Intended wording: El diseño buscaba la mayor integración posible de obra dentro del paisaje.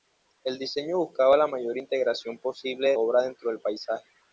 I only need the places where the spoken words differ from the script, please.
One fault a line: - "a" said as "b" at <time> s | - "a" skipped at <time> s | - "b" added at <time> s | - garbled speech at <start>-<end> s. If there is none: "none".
none